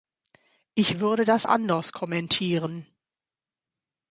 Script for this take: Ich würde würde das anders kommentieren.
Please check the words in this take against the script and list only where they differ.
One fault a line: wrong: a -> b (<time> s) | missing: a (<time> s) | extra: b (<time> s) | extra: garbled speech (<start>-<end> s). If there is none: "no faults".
missing: würde (1.2 s)